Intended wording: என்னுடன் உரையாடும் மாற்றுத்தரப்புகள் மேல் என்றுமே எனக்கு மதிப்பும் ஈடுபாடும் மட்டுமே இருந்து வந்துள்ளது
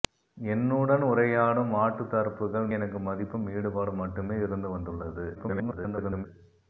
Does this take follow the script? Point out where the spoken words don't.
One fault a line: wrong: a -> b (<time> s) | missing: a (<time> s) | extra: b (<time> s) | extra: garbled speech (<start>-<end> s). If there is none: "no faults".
missing: மேல் என்றுமே (2.7 s)
extra: garbled speech (5.3-6.3 s)